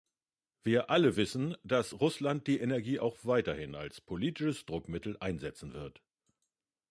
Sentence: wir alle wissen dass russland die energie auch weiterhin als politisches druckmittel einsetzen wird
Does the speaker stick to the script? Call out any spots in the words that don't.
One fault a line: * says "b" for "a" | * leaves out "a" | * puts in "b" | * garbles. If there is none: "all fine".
all fine